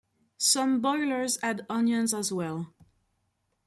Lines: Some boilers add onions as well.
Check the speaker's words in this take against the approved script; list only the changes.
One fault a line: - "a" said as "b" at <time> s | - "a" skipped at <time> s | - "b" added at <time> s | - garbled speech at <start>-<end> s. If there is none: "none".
none